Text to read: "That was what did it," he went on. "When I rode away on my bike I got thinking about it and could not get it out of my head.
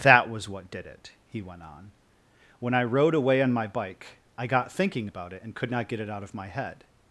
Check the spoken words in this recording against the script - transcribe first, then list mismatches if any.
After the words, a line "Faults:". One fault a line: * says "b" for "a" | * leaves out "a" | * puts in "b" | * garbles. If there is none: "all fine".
"That was what did it," he went on. "When I rode away on my bike I got thinking about it and could not get it out of my head.
Faults:
all fine